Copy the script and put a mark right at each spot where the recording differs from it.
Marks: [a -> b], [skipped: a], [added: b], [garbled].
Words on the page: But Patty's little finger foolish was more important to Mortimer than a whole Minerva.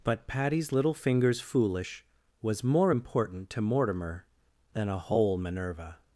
But Patty's little [finger -> fingers] foolish was more important to Mortimer than a whole Minerva.